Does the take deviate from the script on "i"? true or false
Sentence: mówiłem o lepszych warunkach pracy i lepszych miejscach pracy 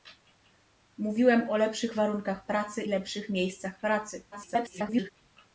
true